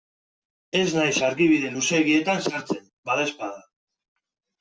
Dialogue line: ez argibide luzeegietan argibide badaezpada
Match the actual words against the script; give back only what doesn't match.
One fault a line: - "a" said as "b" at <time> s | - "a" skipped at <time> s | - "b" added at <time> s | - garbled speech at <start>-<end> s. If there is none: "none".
- "naiz" added at 1.0 s
- "argibide" said as "sartzen" at 2.5 s